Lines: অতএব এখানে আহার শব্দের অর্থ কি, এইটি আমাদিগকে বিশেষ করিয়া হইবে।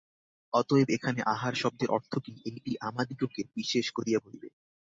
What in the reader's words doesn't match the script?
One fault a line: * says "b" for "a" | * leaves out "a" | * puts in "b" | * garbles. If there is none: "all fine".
all fine